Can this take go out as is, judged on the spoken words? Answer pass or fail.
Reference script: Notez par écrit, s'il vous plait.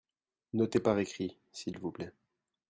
pass